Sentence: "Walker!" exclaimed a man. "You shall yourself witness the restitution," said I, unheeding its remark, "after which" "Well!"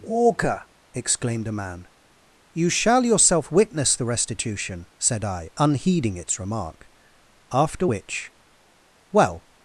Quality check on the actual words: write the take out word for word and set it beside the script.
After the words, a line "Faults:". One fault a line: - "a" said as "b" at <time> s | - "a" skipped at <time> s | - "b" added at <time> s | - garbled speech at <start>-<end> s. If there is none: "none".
"Walker!" exclaimed a man. "You shall yourself witness the restitution," said I, unheeding its remark, "after which" "Well!"
Faults:
none